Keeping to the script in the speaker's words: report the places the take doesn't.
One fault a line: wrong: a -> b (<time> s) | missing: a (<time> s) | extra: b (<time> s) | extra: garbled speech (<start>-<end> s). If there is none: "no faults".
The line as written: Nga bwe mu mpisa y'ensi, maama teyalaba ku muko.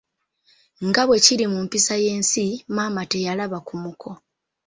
extra: kiri (1.2 s)